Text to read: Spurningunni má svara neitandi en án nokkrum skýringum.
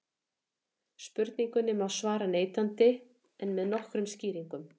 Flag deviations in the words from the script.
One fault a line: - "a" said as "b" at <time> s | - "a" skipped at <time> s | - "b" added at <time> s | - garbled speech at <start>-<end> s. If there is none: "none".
- "án" said as "með" at 3.6 s